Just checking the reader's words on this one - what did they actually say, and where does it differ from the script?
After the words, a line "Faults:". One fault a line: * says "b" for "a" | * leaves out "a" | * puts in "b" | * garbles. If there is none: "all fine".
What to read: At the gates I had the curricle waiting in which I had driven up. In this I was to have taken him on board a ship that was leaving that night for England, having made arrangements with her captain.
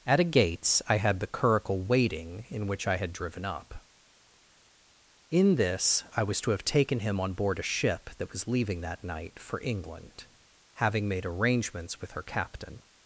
At a gates I had the curricle waiting in which I had driven up. In this I was to have taken him on board a ship that was leaving that night for England, having made arrangements with her captain.
Faults:
* says "a" for "the"